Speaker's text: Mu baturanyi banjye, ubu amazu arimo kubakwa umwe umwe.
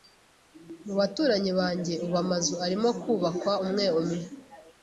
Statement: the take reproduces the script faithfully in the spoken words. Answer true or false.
true